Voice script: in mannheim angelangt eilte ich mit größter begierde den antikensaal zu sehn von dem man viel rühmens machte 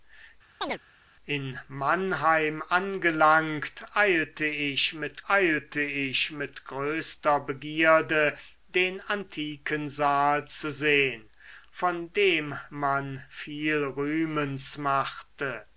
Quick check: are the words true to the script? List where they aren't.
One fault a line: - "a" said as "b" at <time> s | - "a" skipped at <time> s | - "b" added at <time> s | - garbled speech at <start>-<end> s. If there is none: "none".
- "eilte ich mit" added at 5.3 s